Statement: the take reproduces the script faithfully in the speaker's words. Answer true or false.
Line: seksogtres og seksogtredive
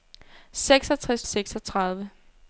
true